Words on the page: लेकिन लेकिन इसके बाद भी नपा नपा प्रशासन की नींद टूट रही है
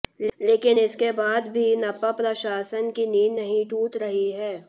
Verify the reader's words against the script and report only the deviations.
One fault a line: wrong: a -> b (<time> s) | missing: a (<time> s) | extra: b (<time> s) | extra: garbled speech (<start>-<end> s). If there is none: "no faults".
missing: लेकिन (0.8 s)
missing: नपा (2.1 s)
extra: नहीं (3.4 s)